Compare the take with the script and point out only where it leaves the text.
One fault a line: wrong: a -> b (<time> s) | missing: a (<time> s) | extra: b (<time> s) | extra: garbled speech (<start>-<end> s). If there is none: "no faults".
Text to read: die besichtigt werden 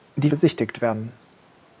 no faults